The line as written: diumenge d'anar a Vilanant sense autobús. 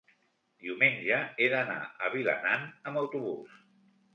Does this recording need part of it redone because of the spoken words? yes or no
yes